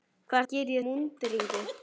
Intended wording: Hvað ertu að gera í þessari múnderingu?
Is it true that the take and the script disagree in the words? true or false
true